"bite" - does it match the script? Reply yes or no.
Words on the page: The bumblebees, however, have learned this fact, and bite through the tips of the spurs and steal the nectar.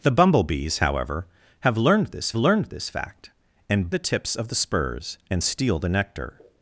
no